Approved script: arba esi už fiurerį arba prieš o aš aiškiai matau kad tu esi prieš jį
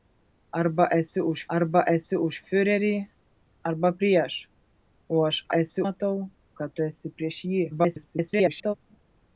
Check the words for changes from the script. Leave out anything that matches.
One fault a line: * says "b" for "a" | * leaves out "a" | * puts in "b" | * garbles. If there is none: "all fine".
* puts in "arba esi už"
* says "esi" for "aiškiai"
* garbles